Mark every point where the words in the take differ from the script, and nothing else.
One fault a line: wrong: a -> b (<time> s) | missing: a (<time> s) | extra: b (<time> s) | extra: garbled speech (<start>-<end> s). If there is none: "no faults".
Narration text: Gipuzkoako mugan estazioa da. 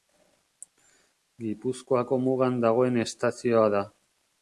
extra: dagoen (2.7 s)